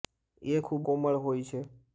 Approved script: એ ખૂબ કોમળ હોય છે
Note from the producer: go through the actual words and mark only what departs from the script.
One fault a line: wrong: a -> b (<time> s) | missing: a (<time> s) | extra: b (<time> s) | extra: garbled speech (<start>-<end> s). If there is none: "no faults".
no faults